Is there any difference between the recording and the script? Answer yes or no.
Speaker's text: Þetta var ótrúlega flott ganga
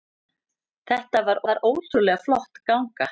yes